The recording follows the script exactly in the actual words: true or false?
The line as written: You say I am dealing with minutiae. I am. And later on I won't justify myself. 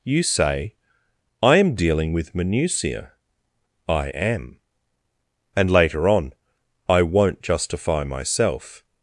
true